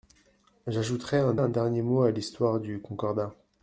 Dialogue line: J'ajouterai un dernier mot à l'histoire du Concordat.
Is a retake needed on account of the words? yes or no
yes